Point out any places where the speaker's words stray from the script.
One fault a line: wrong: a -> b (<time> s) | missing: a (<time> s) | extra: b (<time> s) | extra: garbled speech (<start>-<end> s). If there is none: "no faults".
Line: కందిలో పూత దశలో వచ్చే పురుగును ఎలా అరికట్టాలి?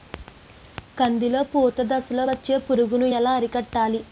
no faults